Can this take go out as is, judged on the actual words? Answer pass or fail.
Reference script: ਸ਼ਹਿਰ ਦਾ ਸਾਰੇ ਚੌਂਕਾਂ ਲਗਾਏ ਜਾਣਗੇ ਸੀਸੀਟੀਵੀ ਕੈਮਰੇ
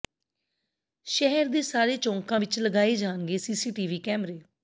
fail